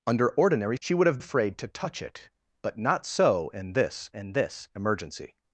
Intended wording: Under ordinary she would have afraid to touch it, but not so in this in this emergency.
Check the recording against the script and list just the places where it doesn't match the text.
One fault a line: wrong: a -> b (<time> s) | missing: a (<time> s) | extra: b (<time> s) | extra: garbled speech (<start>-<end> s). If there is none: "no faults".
no faults